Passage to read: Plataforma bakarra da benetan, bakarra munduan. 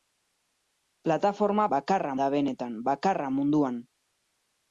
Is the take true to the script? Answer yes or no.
yes